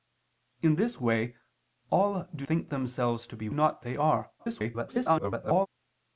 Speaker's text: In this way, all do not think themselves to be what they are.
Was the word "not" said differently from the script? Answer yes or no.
yes